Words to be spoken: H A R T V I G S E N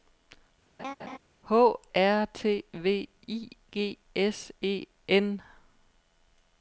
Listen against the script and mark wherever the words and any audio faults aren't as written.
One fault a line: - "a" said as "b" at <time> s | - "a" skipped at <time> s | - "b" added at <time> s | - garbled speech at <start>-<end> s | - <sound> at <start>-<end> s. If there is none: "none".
- laugh at 0.8-1.2 s
- "A" skipped at 1.8 s